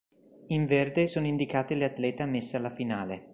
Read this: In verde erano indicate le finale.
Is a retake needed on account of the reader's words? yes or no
yes